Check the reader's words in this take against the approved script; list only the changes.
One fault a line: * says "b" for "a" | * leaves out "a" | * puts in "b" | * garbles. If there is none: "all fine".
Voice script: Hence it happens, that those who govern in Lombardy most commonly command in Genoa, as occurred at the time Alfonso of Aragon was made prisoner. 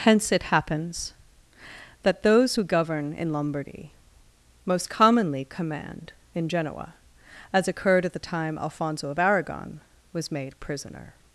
all fine